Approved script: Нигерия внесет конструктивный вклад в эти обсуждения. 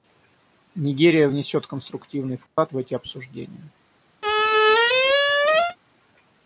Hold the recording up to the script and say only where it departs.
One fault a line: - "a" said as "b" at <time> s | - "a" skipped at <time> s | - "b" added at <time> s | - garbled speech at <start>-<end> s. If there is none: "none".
none